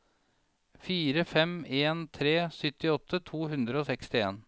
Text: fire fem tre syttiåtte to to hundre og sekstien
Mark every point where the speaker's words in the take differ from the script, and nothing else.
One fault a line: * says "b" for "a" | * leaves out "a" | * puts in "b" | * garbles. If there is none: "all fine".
* puts in "en"
* leaves out "to"